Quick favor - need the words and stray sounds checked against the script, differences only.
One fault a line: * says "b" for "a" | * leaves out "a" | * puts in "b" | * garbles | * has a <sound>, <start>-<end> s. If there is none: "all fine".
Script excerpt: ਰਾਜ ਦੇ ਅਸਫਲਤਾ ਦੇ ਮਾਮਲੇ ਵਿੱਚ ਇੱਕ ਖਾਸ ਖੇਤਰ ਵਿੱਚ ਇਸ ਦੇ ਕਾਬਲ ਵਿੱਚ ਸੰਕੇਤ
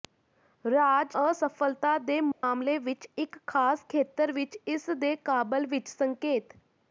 * leaves out "ਦੇ"
* has a dropout, 2.3-2.4 s